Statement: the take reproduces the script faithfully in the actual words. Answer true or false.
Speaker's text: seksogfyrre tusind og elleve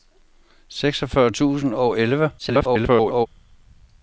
false